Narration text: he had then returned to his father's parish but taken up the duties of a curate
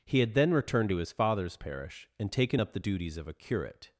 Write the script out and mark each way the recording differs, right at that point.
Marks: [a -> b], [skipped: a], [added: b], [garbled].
he had then returned to his father's parish [but -> and] taken up the duties of a curate